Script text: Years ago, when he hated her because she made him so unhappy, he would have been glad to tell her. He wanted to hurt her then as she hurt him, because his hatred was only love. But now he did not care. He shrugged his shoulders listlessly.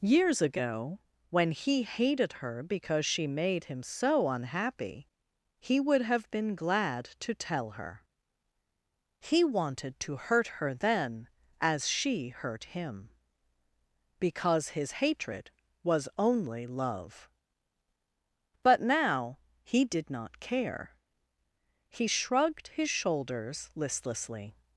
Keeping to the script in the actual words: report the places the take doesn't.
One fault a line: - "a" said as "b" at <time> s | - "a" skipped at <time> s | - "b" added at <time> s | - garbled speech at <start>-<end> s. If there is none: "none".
none